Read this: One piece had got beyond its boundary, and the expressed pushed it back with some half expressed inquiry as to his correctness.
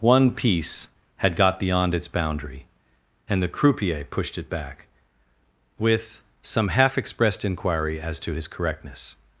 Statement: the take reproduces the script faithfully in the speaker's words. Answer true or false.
false